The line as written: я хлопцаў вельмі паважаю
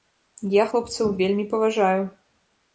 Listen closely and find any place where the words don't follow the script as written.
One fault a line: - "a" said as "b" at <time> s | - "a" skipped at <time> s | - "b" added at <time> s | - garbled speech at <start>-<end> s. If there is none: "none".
none